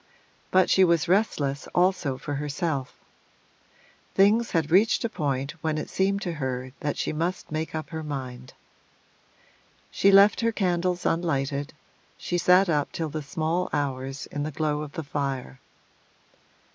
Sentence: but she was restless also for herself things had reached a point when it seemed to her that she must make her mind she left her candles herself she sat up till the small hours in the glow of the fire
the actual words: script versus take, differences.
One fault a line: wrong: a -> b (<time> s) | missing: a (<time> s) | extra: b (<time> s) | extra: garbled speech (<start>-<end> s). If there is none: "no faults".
extra: up (7.7 s)
wrong: herself -> unlighted (11.0 s)